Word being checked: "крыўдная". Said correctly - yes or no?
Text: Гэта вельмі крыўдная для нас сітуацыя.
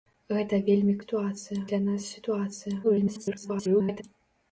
no